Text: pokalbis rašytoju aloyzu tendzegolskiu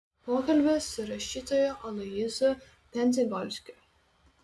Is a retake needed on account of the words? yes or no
yes